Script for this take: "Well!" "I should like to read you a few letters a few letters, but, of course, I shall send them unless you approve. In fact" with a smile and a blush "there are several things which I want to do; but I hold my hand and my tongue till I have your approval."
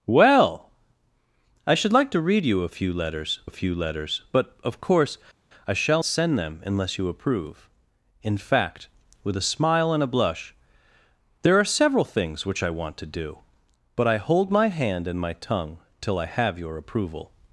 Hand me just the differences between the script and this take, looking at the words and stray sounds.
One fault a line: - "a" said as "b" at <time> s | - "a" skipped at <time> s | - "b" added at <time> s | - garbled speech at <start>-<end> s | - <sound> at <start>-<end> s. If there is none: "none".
none